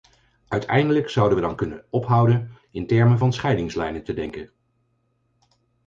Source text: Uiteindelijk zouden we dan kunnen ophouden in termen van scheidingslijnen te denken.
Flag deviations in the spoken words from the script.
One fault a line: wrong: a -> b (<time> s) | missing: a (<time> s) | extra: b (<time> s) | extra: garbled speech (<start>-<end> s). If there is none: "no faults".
no faults